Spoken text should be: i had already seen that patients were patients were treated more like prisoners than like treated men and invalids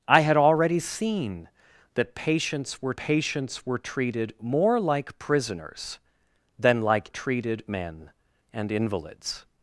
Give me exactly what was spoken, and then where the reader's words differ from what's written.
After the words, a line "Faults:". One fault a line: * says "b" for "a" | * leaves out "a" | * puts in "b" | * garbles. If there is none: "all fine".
i had already seen that patients were patients were treated more like prisoners than like treated men and invalids
Faults:
all fine